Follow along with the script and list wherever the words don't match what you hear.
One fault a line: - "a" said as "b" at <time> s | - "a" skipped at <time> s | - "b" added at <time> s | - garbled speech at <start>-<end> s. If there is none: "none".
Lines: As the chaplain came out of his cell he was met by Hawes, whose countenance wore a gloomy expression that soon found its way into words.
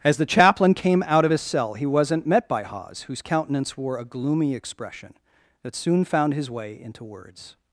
- "was" said as "wasn't" at 1.8 s
- "its" said as "his" at 6.3 s